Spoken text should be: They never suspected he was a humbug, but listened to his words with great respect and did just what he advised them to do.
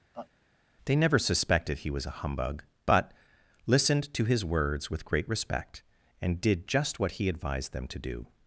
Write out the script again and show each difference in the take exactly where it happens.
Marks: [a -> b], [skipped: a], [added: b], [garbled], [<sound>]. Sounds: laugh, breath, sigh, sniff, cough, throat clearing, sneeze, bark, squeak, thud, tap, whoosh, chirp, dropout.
[laugh] They never suspected he was a humbug, but listened to his words with great respect and did just what he advised them to do.